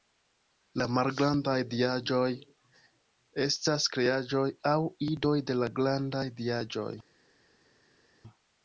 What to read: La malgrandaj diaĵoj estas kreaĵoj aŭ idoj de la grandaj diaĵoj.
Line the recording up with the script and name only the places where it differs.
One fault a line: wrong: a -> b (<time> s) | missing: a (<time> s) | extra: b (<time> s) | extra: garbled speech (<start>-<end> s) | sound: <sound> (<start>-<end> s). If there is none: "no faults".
no faults